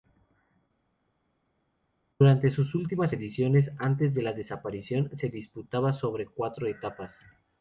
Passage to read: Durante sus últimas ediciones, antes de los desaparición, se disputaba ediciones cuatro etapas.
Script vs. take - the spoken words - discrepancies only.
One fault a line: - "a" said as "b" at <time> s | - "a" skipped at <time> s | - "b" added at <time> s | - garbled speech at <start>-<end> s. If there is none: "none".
- "los" said as "la" at 4.2 s
- "ediciones" said as "sobre" at 5.9 s